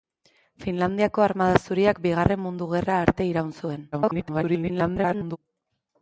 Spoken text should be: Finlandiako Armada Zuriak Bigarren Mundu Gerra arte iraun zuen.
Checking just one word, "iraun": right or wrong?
right